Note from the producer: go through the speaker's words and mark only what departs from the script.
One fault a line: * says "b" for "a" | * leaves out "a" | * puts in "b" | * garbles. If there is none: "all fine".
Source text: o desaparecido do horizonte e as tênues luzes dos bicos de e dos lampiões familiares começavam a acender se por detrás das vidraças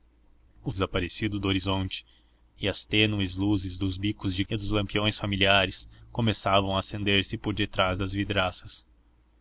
all fine